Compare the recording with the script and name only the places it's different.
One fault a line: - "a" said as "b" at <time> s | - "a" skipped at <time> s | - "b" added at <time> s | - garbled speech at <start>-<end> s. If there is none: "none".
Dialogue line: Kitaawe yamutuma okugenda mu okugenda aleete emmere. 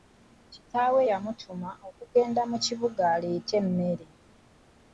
- "okugenda" said as "kibuga" at 2.6 s